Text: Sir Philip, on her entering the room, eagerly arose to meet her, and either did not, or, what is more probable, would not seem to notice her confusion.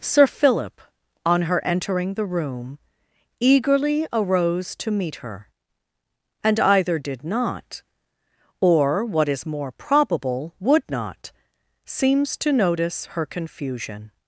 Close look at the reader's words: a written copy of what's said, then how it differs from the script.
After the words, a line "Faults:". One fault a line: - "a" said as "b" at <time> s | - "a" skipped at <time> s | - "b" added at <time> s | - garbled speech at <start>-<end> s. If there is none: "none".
Sir Philip, on her entering the room, eagerly arose to meet her, and either did not, or, what is more probable, would not seems to notice her confusion.
Faults:
- "seem" said as "seems" at 11.8 s